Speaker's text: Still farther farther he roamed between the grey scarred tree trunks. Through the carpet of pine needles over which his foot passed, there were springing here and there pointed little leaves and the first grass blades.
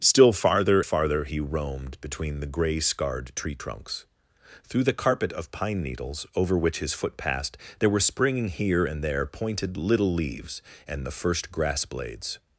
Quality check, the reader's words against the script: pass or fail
pass